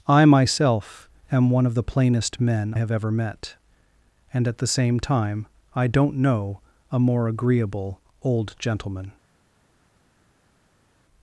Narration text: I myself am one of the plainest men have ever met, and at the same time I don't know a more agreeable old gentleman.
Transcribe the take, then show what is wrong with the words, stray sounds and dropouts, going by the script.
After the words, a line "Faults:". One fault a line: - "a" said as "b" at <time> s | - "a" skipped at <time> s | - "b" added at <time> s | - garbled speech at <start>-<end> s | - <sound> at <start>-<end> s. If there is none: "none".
I myself am one of the plainest men have ever met, and at the same time I don't know a more agreeable old gentleman.
Faults:
none